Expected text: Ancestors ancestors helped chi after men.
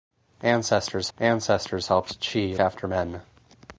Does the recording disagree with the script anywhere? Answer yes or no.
no